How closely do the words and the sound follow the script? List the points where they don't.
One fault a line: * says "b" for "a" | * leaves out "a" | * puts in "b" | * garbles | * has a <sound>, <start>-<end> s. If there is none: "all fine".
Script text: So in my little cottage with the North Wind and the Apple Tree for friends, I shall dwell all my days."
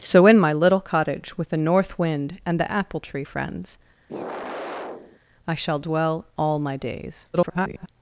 * leaves out "for"
* has a sigh, 4.1-5.2 s
* garbles